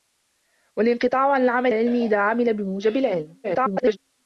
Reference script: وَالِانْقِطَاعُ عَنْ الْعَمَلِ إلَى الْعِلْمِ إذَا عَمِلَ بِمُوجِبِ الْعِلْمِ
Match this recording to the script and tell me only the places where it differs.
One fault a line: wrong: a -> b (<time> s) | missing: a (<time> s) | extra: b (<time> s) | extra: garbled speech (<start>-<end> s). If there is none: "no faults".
missing: إلَى (1.7 s)
extra: garbled speech (3.4-4.0 s)